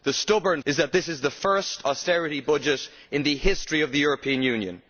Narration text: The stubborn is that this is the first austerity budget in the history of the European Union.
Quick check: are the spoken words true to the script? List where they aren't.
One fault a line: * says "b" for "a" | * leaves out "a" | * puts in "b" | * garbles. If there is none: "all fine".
all fine